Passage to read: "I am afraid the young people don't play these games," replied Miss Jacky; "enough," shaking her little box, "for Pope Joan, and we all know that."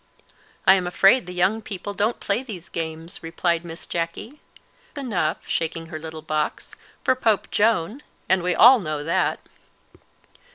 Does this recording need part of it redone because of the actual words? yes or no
no